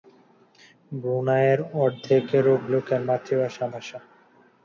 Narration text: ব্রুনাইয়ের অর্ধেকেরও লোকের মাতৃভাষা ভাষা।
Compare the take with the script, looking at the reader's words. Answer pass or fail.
pass